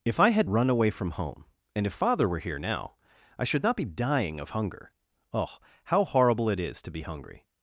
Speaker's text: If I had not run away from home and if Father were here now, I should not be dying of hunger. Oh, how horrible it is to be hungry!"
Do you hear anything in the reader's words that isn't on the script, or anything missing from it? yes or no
yes